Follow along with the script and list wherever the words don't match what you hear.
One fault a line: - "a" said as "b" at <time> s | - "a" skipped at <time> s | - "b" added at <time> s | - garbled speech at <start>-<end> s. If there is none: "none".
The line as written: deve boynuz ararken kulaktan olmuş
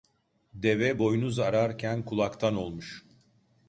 none